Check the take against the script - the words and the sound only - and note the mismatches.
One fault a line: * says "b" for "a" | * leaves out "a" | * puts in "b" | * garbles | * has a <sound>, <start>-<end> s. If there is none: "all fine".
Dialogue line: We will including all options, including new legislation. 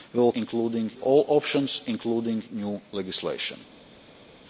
all fine